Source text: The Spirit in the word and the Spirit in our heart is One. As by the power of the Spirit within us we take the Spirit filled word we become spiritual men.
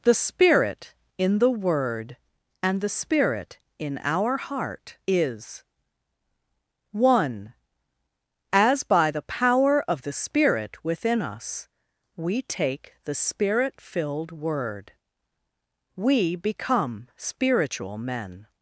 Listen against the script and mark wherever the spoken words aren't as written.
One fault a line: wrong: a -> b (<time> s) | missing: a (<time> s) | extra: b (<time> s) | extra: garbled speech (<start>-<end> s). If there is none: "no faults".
no faults